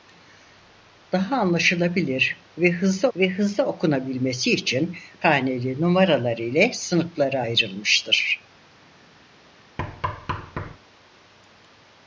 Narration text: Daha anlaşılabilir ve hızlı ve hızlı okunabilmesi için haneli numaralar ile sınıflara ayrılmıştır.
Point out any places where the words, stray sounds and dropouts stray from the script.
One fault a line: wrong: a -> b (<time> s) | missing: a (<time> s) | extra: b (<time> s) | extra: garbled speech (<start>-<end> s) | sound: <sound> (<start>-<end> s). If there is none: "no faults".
sound: thud (9.8-10.8 s)